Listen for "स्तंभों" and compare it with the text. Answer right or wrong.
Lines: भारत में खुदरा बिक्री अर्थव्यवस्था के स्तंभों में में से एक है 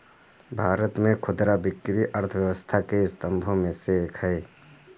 right